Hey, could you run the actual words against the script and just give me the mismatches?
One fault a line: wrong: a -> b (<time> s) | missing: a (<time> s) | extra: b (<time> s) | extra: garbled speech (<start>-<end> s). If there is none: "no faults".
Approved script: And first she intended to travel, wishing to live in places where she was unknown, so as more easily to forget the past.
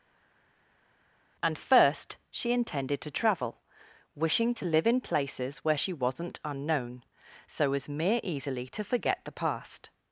wrong: was -> wasn't (5.9 s)
wrong: more -> mere (7.9 s)